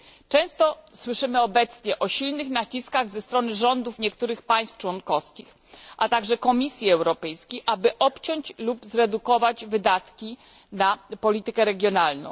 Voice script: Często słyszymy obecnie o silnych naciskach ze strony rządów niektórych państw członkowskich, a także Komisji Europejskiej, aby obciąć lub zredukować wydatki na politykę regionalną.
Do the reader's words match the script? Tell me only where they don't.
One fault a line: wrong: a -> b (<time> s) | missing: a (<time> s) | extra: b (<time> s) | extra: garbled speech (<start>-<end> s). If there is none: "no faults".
no faults